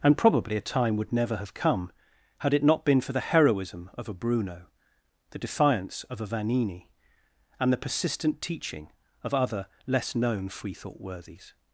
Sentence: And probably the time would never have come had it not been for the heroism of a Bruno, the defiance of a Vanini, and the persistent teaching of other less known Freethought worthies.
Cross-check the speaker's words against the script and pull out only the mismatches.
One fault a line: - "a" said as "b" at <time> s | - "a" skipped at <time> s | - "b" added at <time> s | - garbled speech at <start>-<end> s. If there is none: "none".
- "the" said as "a" at 0.6 s